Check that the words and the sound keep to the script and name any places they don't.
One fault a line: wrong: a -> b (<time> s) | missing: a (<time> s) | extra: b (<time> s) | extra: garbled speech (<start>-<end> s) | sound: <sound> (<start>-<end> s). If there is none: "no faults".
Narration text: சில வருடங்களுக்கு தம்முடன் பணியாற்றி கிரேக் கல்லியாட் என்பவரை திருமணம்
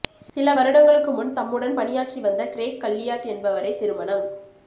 extra: முன் (1.1 s)
extra: வந்த (2.2 s)